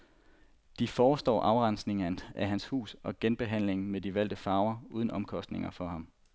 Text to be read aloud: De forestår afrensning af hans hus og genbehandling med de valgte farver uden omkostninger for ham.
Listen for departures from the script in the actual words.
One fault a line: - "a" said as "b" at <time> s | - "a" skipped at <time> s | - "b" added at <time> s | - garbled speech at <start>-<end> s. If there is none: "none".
none